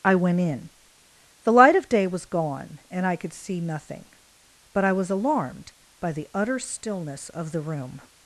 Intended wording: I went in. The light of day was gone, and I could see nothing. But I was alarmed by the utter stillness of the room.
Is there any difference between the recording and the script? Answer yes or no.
no